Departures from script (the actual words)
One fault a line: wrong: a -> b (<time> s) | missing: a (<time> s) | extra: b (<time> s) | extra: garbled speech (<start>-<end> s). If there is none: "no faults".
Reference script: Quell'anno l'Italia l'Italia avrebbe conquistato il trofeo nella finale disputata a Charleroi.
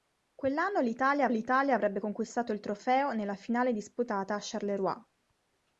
no faults